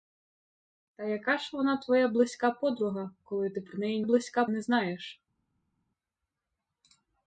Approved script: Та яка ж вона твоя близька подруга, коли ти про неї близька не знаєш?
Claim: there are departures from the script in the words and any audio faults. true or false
false